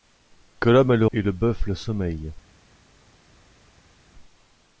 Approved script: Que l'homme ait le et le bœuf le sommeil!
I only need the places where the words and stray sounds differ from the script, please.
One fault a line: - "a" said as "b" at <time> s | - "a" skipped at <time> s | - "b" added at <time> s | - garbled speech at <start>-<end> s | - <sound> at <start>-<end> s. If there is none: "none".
none